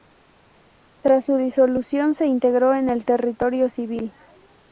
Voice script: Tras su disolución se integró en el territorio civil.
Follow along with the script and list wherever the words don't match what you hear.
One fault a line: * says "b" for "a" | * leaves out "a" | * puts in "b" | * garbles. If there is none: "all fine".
all fine